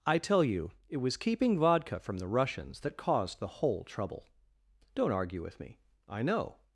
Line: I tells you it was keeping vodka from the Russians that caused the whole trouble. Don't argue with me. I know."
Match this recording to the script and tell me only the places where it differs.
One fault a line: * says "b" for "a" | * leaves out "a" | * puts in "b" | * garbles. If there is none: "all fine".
* says "tell" for "tells"